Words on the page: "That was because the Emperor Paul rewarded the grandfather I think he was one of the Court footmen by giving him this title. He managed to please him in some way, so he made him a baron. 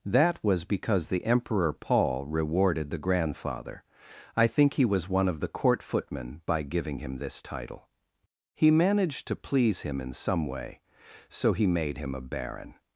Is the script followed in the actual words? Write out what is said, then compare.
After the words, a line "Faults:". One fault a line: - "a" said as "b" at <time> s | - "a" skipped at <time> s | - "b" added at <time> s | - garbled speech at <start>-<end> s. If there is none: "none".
"That was because the Emperor Paul rewarded the grandfather I think he was one of the Court footmen by giving him this title. He managed to please him in some way, so he made him a baron.
Faults:
none